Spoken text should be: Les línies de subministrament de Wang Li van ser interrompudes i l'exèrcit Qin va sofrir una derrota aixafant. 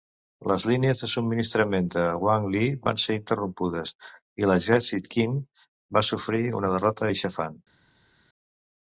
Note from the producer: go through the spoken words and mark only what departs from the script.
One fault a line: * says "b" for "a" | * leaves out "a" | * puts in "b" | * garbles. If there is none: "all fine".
all fine